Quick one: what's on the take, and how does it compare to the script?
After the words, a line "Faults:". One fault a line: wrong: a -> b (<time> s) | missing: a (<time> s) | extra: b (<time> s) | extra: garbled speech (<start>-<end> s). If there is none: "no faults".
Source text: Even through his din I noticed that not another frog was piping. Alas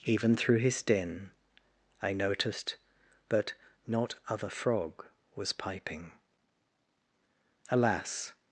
Even through his din I noticed that not other frog was piping. Alas
Faults:
wrong: another -> other (4.3 s)